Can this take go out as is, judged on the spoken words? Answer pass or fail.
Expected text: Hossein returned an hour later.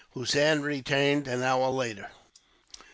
pass